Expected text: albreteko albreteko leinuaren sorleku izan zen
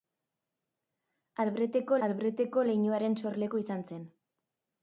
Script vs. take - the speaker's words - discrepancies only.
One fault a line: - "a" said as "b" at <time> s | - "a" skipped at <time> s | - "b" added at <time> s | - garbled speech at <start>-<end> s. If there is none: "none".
none